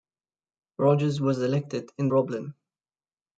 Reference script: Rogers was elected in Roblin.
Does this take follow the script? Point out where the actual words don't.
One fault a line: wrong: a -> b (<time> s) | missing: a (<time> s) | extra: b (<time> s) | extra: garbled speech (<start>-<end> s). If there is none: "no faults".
no faults